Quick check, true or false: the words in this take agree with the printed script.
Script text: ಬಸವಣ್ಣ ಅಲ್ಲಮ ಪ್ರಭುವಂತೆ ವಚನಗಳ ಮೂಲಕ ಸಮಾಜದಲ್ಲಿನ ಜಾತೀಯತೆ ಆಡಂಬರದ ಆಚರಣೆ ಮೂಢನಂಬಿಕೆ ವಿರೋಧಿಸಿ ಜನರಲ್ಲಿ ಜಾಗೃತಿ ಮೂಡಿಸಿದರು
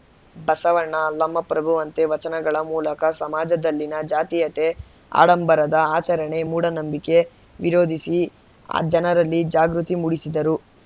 true